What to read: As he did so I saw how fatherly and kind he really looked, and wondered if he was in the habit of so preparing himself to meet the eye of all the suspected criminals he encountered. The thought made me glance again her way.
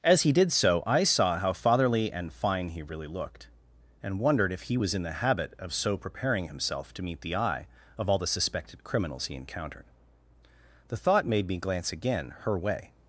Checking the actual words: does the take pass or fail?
fail